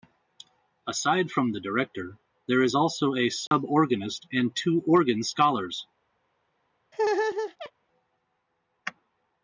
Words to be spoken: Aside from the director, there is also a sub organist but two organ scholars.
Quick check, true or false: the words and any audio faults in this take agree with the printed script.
false